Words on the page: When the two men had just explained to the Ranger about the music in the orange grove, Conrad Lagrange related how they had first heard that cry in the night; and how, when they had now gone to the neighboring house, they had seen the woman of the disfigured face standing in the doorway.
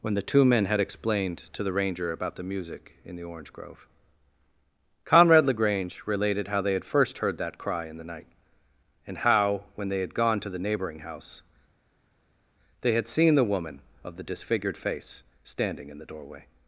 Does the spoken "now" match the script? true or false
false